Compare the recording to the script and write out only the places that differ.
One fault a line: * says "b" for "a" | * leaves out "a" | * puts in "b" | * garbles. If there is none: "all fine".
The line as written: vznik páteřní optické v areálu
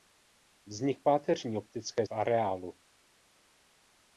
all fine